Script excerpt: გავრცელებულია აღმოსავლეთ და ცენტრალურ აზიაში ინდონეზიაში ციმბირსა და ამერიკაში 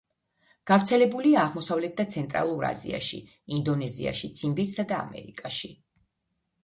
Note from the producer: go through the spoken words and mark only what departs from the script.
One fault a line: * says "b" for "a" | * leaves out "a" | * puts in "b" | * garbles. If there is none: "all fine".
all fine